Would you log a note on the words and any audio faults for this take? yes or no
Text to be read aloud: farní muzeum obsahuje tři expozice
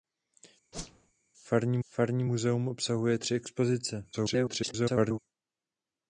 yes